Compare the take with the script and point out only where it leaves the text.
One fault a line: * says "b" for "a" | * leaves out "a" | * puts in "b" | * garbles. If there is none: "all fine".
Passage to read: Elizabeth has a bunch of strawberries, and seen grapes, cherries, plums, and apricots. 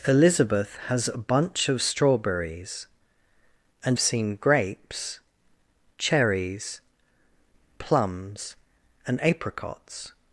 all fine